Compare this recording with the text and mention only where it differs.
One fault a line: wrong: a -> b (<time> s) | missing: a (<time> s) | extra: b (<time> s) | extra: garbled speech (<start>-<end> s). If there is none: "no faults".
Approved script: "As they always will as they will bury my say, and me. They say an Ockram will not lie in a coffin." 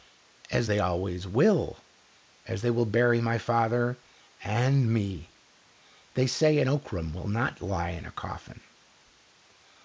wrong: say -> father (3.4 s)